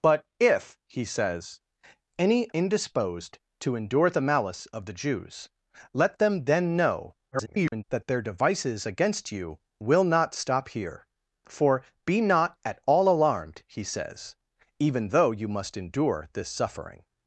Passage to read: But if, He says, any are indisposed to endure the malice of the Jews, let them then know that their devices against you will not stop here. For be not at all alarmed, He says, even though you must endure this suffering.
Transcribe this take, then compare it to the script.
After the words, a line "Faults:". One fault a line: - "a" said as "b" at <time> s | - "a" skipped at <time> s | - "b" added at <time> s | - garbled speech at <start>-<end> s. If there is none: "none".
But if, He says, any indisposed to endure the malice of the Jews, let them then know [garbled] that their devices against you will not stop here. For be not at all alarmed, He says, even though you must endure this suffering.
Faults:
- "are" skipped at 2.5 s
- garbled speech at 7.3-7.8 s